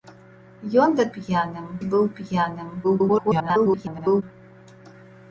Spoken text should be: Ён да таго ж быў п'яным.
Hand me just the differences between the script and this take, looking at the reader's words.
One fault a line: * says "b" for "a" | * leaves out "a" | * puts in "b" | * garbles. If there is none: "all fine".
* says "п'яным" for "таго"
* garbles